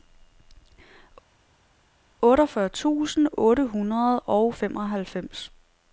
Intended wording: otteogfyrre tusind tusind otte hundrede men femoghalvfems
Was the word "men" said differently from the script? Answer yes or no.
yes